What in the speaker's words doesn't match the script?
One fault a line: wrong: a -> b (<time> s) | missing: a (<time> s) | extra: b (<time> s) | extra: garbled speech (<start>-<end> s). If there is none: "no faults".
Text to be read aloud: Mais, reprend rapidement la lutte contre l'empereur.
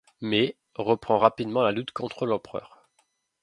no faults